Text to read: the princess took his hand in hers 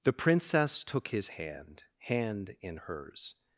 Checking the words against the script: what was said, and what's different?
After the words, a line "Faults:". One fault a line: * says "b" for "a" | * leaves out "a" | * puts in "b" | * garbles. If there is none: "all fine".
the princess took his hand hand in hers
Faults:
* puts in "hand"